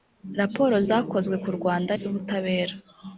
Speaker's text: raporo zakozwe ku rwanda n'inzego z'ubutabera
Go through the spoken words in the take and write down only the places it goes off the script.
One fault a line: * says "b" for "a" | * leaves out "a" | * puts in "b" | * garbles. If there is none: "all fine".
* leaves out "n'inzego"